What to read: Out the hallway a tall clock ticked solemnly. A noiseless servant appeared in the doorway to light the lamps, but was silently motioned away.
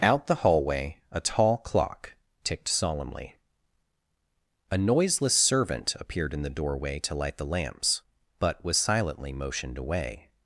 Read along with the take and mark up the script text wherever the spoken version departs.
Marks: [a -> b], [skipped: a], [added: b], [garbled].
Out the hallway a tall clock ticked solemnly. A noiseless servant appeared in the doorway to light the lamps, but was silently motioned away.